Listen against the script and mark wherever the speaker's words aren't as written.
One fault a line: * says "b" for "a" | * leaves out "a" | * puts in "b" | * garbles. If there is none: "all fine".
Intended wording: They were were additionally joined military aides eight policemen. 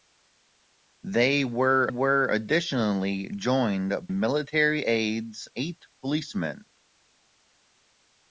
all fine